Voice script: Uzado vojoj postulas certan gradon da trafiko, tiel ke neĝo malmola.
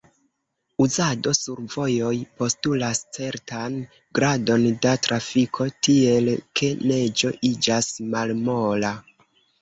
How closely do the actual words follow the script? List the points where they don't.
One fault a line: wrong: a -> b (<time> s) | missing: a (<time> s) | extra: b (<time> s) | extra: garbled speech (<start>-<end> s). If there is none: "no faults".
extra: sur (1.4 s)
extra: iĝas (7.5 s)